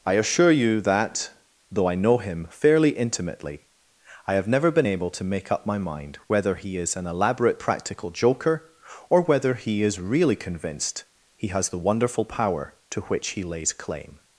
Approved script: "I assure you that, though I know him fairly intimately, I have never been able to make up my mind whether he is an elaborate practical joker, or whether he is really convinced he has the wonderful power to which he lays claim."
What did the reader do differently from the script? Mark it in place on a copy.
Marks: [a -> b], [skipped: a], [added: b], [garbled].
"I assure you that, though I know him fairly intimately, I have never been able to make up my mind whether he is an elaborate practical joker, or whether he is really convinced he has the wonderful power to which he lays claim."